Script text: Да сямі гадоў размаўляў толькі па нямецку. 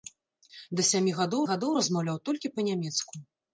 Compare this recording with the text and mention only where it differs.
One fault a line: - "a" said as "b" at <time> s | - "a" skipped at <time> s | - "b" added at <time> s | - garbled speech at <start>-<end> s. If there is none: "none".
- "гадоў" added at 1.5 s